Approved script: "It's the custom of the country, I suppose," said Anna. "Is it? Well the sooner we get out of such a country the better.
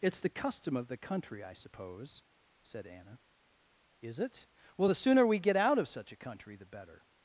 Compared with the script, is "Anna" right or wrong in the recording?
right